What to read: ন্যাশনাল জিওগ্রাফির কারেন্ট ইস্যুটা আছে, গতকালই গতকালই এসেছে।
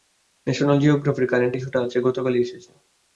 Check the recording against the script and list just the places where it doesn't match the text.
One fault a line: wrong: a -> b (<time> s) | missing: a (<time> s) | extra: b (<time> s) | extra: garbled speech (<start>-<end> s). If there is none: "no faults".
missing: গতকালই (2.4 s)